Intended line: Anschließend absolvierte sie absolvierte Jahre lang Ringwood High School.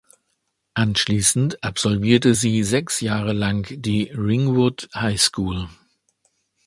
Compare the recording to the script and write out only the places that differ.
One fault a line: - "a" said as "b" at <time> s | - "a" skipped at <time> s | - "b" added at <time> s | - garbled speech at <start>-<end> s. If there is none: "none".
- "absolvierte" said as "sechs" at 2.6 s
- "die" added at 3.7 s